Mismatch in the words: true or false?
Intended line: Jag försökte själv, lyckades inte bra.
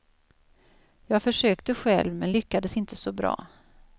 true